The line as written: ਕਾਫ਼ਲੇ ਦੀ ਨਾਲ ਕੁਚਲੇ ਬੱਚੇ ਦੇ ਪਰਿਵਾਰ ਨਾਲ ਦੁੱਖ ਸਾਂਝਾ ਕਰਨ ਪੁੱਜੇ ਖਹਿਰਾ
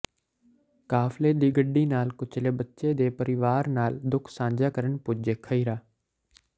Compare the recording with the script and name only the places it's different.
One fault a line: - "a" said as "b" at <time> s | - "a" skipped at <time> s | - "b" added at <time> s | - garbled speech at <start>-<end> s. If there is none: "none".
- "ਗੱਡੀ" added at 1.5 s